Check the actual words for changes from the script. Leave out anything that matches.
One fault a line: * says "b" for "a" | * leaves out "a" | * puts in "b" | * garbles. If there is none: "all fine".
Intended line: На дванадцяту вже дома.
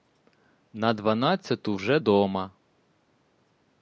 all fine